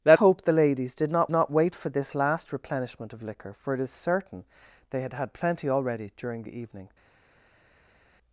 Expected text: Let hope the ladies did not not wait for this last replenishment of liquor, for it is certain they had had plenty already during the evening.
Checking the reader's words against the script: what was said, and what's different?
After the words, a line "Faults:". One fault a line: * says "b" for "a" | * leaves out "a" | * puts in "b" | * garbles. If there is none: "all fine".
Let hope the ladies did not not wait for this last replenishment of liquor, for it is certain they had had plenty already during the evening.
Faults:
all fine